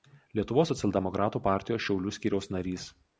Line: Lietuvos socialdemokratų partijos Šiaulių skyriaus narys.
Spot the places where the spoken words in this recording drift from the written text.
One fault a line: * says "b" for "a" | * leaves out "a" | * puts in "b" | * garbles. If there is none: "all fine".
all fine